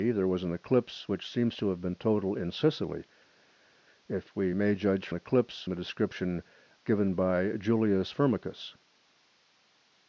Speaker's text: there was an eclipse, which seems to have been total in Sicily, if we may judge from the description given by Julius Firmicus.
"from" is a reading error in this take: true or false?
true